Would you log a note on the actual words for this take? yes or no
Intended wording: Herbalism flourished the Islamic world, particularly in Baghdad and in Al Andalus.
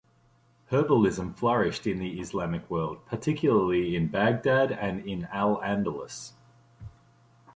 yes